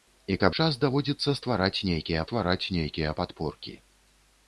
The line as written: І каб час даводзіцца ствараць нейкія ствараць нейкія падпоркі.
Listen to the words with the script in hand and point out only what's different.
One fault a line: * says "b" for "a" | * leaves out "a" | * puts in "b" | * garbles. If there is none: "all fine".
all fine